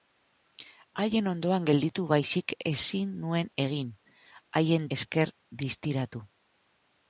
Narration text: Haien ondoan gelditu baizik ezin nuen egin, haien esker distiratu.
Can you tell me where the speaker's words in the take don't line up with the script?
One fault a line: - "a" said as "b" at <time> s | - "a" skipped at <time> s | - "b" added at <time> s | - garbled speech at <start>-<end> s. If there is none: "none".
none